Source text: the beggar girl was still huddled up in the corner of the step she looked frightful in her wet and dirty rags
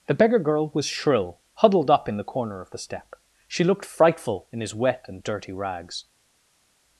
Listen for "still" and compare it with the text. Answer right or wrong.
wrong